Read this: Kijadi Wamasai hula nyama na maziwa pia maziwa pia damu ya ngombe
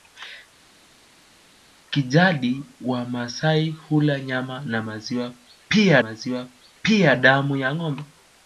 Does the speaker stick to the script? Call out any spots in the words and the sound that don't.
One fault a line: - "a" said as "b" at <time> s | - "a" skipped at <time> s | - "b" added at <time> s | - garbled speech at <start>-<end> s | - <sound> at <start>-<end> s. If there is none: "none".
none